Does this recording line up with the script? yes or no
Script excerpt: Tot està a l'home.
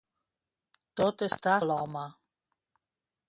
yes